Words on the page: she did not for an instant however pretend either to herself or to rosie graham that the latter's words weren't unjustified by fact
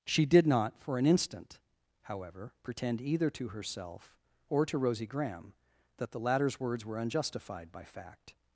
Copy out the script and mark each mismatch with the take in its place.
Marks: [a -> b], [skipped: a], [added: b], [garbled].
she did not for an instant however pretend either to herself or to rosie graham that the latter's words [weren't -> were] unjustified by fact